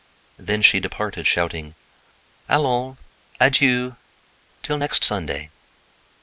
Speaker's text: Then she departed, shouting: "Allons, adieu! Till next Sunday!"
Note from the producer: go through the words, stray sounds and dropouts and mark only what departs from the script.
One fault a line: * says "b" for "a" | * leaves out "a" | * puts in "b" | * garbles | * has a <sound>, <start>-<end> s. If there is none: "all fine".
all fine